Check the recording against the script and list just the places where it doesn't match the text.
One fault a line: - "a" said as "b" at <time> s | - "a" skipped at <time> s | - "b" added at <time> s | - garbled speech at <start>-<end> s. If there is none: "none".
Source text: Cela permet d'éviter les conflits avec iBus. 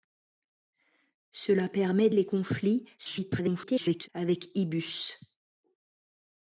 - "d'éviter" skipped at 2.1 s
- garbled speech at 3.0-4.1 s